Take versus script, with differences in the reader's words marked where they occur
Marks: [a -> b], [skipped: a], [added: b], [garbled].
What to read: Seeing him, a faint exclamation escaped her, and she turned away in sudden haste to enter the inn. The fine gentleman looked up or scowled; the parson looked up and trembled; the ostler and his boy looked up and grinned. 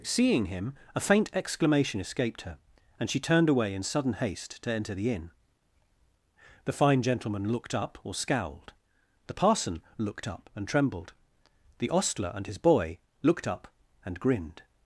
Seeing him, a faint exclamation escaped her, and she turned away in sudden haste to enter the inn. The fine gentleman looked up or scowled; the parson looked up and trembled; the ostler and his boy looked up and grinned.